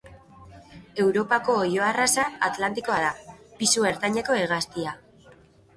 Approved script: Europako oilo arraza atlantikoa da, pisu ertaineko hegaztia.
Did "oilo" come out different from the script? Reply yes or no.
no